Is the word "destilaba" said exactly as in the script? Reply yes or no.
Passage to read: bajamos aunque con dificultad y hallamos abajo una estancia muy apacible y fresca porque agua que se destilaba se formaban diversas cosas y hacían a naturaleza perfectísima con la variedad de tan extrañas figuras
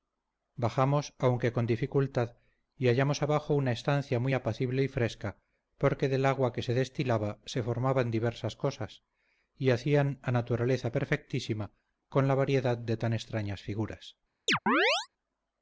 yes